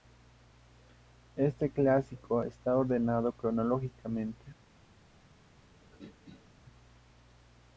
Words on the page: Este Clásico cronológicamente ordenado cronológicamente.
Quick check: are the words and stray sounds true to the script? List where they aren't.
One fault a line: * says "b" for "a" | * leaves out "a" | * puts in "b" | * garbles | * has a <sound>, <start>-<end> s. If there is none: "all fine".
* says "está" for "cronológicamente"
* has a throat clearing, 5.7-6.5 s